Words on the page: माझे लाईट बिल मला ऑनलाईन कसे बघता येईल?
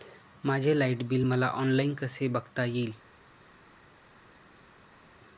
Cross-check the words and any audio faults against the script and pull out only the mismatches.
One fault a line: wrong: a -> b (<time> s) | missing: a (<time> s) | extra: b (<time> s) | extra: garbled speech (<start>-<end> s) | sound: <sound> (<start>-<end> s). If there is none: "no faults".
no faults